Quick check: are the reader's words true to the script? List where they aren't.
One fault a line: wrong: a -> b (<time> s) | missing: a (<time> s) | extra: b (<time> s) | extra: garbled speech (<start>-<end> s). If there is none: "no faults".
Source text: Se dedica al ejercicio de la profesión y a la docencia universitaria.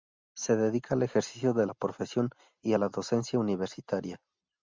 no faults